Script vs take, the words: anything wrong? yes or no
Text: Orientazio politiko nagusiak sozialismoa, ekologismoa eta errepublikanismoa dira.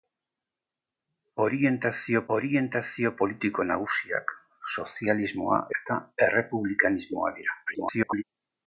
yes